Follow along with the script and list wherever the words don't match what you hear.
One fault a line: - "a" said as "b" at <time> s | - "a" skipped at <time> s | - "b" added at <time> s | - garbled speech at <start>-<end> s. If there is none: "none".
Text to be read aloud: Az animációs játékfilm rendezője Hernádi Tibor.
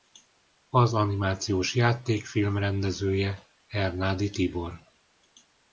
none